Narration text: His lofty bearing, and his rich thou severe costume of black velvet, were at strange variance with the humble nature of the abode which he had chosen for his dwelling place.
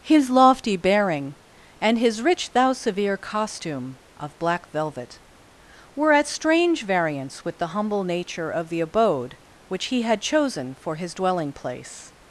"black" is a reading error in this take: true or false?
false